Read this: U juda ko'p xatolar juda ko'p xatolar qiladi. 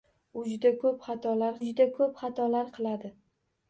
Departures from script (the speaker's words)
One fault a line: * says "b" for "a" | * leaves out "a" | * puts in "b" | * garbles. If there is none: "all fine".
all fine